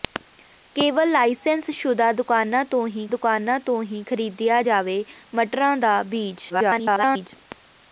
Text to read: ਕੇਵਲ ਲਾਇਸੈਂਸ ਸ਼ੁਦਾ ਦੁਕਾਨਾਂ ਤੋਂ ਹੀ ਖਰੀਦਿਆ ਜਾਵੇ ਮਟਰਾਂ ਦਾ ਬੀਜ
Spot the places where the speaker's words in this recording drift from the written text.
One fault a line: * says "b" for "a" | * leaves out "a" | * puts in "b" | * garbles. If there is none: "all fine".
* puts in "ਦੁਕਾਨਾਂ ਤੋਂ ਹੀ"
* garbles